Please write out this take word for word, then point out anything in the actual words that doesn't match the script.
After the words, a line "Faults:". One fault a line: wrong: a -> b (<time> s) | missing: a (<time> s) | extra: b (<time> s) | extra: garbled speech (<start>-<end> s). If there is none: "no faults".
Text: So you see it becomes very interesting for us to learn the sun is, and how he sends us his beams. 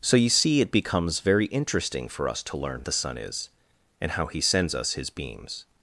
So you see it becomes very interesting for us to learn the sun is, and how he sends us his beams.
Faults:
no faults